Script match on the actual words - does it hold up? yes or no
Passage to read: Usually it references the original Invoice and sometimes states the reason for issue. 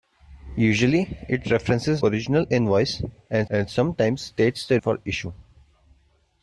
no